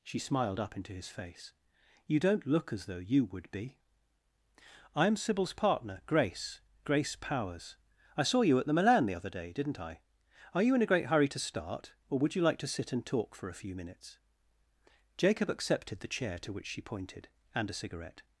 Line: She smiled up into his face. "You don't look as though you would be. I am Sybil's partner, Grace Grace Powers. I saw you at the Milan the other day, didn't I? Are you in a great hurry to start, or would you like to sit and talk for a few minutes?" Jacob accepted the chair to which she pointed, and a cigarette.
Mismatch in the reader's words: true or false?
false